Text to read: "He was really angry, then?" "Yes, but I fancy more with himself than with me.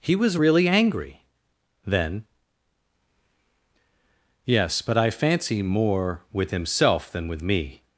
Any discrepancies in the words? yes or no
no